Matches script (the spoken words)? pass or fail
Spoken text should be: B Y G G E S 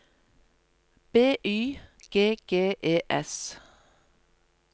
pass